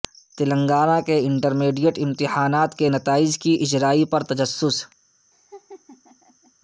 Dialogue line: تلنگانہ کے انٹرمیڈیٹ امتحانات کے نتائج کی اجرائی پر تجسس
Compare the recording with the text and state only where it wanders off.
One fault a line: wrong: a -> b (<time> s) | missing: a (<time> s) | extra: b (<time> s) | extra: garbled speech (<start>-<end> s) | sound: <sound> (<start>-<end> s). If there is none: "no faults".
sound: laugh (5.3-6.5 s)